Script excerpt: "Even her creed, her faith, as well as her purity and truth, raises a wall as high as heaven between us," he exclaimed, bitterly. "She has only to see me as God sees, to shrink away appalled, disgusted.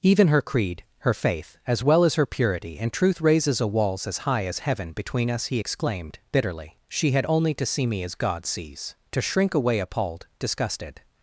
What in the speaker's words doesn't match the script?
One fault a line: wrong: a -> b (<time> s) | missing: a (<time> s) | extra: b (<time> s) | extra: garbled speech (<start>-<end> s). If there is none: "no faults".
wrong: wall -> walls (3.7 s)
wrong: has -> had (7.1 s)